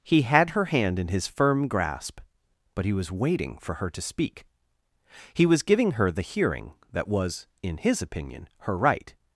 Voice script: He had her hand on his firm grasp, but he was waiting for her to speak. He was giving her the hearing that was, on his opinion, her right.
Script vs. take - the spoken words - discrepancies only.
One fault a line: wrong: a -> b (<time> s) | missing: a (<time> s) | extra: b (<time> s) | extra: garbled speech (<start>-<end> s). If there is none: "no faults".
wrong: on -> in (1.0 s)
wrong: on -> in (7.6 s)